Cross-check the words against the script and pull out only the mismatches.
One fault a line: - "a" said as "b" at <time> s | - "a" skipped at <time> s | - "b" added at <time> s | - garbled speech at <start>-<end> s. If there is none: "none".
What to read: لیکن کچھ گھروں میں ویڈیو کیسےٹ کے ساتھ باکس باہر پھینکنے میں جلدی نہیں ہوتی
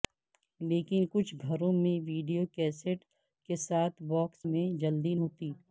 - "باہر پھینکنے" skipped at 4.5 s
- "نہیں" skipped at 5.1 s